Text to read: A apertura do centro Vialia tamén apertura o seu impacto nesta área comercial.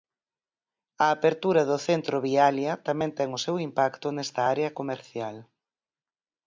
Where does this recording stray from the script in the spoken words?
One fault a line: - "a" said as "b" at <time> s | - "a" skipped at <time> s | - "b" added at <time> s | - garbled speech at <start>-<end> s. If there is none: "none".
- "apertura" said as "ten" at 3.2 s